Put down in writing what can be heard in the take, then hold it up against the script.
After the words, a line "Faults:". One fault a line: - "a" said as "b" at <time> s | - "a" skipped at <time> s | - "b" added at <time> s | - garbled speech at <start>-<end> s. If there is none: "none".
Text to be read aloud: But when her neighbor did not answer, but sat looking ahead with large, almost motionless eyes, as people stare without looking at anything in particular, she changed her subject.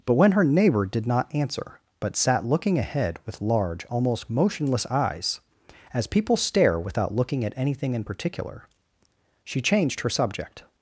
But when her neighbor did not answer, but sat looking ahead with large, almost motionless eyes, as people stare without looking at anything in particular, she changed her subject.
Faults:
none